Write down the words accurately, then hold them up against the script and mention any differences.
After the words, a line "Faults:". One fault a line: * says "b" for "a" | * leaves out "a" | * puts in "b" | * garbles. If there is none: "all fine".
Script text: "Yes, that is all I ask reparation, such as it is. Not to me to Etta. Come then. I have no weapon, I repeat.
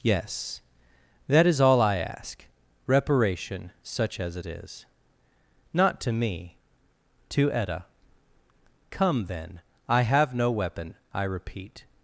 "Yes, that is all I ask reparation, such as it is. Not to me to Etta. Come then. I have no weapon, I repeat.
Faults:
all fine